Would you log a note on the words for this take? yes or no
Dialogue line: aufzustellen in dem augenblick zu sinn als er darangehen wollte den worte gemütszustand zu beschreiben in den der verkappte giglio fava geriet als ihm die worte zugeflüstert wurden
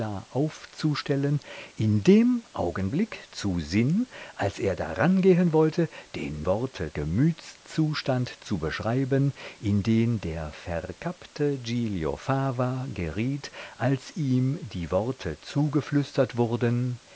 no